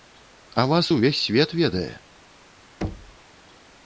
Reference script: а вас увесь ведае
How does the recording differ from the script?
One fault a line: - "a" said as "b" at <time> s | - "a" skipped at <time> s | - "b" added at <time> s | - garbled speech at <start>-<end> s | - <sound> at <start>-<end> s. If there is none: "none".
- "свет" added at 1.2 s
- thud at 2.8-3.2 s